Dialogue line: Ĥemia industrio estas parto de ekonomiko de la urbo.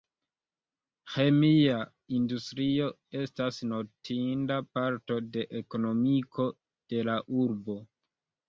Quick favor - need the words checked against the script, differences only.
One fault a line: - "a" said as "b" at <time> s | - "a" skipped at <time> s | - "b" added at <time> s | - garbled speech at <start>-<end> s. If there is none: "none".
- "notinda" added at 3.7 s